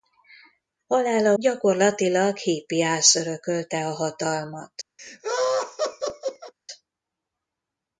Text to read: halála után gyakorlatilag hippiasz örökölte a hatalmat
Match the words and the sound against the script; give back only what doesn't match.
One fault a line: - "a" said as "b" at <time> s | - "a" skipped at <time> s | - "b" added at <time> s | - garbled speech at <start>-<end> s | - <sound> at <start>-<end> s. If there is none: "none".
- "után" skipped at 1.3 s
- laugh at 5.0-6.5 s